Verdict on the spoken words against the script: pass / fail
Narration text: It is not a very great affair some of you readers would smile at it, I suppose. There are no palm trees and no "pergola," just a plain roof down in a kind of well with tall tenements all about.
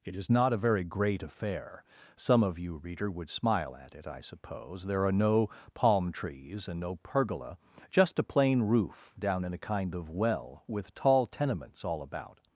fail